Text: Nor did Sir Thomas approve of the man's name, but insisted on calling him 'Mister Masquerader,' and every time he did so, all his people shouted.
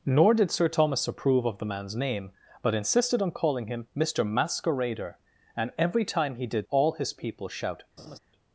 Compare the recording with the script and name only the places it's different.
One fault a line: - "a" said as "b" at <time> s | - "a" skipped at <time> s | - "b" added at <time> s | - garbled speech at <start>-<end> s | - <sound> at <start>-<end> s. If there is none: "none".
- "so" skipped at 6.7 s
- laugh at 8.0-8.2 s